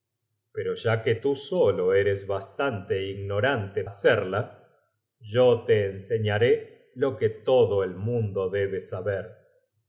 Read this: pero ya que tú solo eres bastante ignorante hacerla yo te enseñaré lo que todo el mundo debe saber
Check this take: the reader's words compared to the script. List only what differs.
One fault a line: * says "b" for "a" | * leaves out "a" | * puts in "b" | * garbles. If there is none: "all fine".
all fine